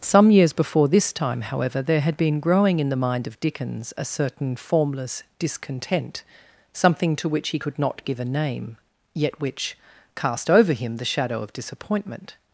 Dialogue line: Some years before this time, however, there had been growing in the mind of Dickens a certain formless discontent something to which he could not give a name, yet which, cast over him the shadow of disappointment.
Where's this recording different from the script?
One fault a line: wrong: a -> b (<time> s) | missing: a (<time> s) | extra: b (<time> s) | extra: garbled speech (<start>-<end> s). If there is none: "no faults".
no faults